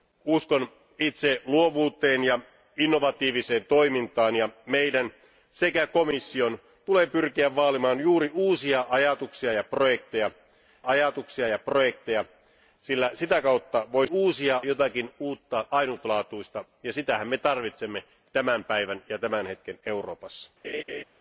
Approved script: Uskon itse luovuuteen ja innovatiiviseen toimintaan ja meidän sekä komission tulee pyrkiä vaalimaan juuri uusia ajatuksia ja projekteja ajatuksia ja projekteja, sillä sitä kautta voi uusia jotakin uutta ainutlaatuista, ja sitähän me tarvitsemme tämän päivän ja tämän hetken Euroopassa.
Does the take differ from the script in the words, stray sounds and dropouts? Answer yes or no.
yes